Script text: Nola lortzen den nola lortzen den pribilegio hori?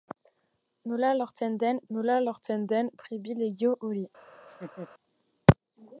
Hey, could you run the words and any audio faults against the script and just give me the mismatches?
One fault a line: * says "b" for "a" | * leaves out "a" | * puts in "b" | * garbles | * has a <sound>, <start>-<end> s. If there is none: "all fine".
* has a laugh, 4.3-4.9 s